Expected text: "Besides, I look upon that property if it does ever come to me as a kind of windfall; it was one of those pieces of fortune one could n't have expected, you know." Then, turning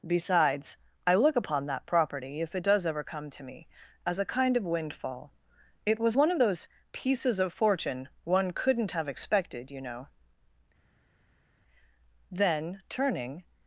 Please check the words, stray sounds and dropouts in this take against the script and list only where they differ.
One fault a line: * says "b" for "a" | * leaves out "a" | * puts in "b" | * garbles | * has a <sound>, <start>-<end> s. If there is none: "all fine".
all fine